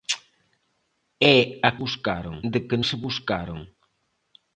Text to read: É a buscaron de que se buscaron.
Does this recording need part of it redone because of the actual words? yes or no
no